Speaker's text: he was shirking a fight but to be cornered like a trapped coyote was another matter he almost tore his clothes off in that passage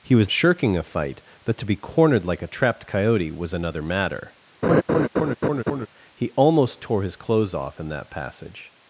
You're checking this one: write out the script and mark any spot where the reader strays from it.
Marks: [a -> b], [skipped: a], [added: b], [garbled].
he was shirking a fight but to be cornered like a trapped coyote was another matter he almost tore his clothes off in that passage